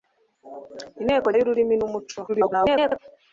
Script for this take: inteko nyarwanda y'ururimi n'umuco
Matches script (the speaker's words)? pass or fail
fail